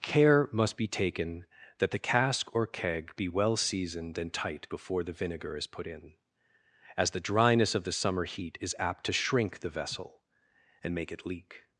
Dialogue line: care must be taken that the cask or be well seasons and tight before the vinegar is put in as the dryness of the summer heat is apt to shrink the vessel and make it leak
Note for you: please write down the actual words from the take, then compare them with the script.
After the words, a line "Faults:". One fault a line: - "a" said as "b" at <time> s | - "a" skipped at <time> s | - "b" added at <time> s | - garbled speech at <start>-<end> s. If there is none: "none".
care must be taken that the cask or keg be well seasoned and tight before the vinegar is put in as the dryness of the summer heat is apt to shrink the vessel and make it leak
Faults:
- "keg" added at 2.7 s
- "seasons" said as "seasoned" at 3.6 s